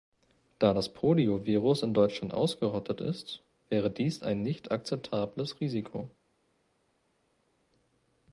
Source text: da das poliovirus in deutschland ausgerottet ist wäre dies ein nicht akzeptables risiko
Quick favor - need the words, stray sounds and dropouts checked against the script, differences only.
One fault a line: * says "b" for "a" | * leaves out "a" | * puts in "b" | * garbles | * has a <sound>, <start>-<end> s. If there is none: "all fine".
all fine